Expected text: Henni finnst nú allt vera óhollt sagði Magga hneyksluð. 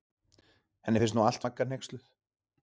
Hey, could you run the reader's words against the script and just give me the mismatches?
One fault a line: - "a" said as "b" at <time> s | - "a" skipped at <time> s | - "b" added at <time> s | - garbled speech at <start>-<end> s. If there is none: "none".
- "vera óhollt sagði" skipped at 1.5 s